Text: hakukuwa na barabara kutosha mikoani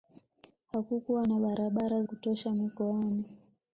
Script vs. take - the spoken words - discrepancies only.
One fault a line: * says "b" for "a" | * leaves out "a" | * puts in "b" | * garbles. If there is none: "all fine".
all fine